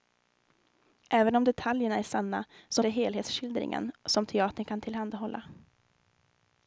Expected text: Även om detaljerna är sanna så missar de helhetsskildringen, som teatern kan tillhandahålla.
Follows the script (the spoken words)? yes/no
no